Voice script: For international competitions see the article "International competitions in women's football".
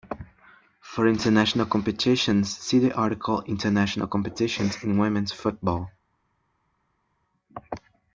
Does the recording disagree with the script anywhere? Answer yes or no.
no